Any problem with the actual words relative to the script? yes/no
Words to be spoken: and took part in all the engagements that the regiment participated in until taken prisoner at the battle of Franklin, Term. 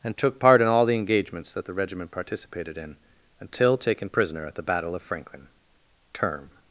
no